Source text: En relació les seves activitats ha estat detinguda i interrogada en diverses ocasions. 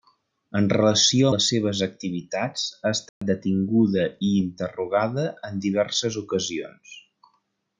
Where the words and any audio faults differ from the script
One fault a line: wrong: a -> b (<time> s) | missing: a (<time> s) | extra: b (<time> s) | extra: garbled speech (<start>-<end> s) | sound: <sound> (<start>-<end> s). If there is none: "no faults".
sound: dropout (3.1-3.2 s)